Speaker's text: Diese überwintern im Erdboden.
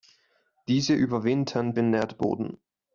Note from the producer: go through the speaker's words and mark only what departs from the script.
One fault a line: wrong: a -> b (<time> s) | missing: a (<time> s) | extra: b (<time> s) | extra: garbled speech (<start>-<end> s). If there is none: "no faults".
no faults